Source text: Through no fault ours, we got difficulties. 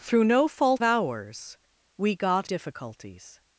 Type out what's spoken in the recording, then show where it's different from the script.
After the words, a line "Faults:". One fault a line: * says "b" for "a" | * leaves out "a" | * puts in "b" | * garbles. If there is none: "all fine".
Through no fault ours, we got difficulties.
Faults:
all fine